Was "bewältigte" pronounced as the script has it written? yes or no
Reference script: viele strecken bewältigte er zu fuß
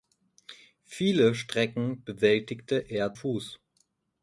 yes